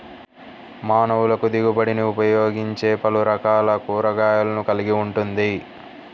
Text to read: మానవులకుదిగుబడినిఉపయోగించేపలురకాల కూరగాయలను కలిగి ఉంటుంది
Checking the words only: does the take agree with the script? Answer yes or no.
yes